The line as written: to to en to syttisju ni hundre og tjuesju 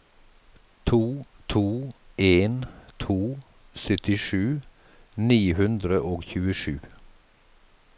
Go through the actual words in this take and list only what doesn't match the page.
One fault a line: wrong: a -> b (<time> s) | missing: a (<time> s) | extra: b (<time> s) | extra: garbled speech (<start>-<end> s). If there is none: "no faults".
no faults